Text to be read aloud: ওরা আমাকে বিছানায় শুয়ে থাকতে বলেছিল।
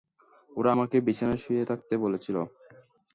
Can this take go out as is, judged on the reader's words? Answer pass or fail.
pass